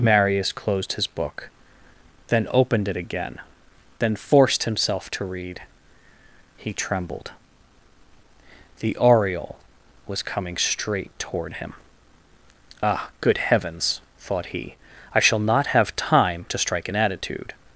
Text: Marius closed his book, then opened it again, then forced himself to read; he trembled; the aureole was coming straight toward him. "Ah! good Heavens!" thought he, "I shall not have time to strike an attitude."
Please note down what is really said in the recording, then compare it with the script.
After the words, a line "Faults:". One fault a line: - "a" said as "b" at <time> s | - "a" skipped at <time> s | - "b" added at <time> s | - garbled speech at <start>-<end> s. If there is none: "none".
Marius closed his book, then opened it again, then forced himself to read; he trembled; the aureole was coming straight toward him. "Ah! good Heavens!" thought he, "I shall not have time to strike an attitude."
Faults:
none